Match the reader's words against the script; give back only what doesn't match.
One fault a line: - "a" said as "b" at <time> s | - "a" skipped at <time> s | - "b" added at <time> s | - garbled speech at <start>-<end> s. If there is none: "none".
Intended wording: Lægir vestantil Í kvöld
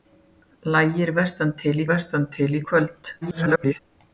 - "vestantil" added at 1.9 s
- garbled speech at 3.2-3.8 s